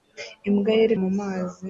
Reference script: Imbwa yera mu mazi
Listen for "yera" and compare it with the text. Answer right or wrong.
right